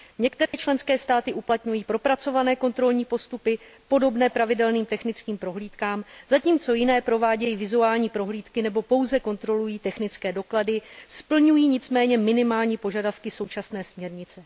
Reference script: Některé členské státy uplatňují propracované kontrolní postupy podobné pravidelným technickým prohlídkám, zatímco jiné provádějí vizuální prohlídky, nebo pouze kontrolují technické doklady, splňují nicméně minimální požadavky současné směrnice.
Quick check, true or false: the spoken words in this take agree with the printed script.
true